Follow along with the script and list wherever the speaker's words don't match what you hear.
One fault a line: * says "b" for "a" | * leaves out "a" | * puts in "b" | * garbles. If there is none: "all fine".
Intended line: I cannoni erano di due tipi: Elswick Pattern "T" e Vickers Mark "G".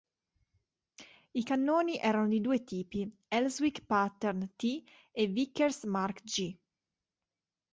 all fine